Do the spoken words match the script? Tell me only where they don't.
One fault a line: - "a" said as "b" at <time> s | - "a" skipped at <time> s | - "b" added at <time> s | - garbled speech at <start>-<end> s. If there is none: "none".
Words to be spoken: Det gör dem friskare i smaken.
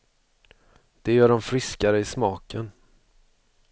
none